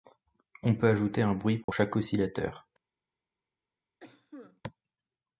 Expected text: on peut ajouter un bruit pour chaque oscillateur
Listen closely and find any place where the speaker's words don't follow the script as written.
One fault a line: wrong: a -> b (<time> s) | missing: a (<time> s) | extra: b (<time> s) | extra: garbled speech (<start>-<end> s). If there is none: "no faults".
no faults